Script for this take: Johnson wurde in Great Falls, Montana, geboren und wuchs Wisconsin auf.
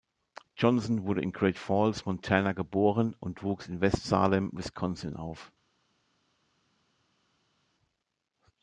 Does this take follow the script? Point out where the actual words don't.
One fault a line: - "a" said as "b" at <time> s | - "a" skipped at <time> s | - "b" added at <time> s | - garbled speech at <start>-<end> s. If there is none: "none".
- "in West Salem" added at 3.7 s